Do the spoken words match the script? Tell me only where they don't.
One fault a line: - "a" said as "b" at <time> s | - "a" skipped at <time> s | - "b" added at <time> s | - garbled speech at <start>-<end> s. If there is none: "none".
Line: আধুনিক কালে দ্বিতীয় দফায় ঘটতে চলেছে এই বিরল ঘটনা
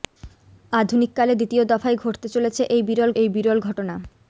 - "এই বিরল" added at 3.1 s